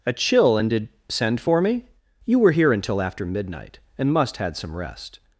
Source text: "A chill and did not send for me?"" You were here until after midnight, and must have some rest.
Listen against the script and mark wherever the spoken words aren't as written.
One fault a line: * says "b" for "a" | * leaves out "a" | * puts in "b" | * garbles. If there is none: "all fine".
* leaves out "not"
* says "had" for "have"